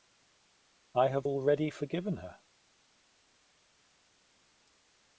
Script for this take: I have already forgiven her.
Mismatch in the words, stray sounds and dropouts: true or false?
false